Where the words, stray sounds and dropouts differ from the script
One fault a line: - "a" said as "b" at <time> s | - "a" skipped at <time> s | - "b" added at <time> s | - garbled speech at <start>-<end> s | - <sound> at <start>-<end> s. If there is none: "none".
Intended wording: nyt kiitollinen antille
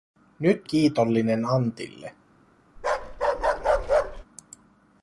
- bark at 2.8-4.2 s